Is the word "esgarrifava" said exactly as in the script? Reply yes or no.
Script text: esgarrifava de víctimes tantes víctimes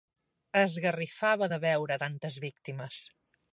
yes